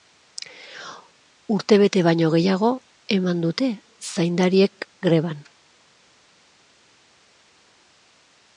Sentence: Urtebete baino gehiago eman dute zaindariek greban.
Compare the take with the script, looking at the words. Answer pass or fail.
pass